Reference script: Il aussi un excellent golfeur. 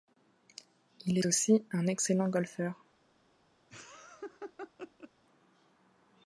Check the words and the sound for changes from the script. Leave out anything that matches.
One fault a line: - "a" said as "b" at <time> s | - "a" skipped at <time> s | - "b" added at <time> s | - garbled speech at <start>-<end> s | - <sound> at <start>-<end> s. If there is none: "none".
- laugh at 3.7-5.1 s